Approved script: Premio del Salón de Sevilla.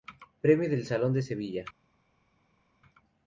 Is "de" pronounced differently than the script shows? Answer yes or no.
no